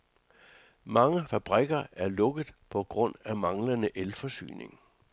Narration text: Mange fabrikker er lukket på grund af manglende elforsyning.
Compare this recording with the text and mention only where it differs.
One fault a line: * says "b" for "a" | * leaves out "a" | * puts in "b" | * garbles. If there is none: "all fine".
all fine